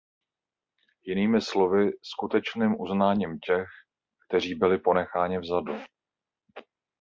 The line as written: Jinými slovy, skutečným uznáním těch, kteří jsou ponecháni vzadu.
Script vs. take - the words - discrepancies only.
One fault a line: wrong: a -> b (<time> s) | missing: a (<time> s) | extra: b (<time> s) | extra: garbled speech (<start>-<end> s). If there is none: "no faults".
wrong: jsou -> byli (4.5 s)